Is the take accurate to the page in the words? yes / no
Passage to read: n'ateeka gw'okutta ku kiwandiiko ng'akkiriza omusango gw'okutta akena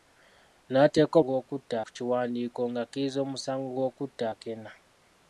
yes